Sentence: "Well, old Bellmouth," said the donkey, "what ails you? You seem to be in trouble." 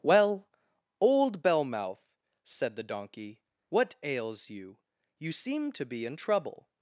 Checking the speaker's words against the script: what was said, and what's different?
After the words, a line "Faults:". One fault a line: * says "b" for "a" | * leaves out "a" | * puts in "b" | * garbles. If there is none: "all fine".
"Well, old Bellmouth," said the donkey, "what ails you? You seem to be in trouble."
Faults:
all fine